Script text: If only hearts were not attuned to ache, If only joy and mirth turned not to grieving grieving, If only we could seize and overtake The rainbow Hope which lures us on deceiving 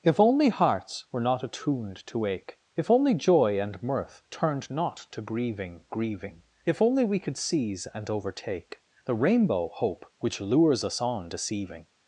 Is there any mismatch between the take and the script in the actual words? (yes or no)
no